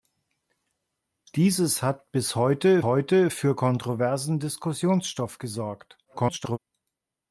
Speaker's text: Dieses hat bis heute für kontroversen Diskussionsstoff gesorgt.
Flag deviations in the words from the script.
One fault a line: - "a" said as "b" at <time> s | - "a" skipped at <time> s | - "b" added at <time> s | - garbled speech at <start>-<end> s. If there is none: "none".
- "heute" added at 2.8 s
- garbled speech at 6.0-6.6 s